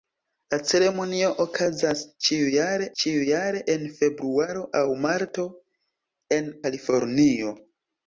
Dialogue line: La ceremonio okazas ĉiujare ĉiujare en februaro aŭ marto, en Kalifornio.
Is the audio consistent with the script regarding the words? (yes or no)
yes